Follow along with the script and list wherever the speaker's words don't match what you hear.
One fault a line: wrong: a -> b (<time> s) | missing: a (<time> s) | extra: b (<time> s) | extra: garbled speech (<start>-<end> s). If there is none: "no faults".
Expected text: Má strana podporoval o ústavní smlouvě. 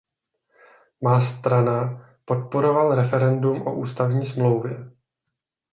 extra: referendum (3.0 s)